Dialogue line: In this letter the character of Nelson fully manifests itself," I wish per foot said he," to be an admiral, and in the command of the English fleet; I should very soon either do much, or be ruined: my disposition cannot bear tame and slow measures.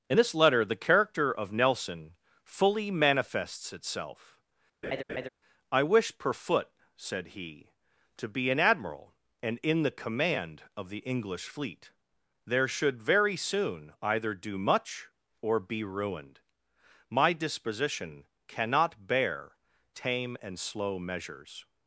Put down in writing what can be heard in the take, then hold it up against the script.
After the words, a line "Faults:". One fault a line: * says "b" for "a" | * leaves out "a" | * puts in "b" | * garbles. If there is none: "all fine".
In this letter the character of Nelson fully manifests itself," I wish per foot said he," to be an admiral, and in the command of the English fleet; there should very soon either do much, or be ruined: my disposition cannot bear tame and slow measures.
Faults:
* says "there" for "I"